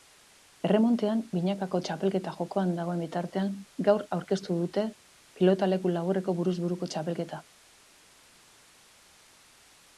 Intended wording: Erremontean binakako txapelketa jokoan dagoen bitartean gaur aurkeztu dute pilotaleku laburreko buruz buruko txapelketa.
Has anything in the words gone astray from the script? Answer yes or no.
no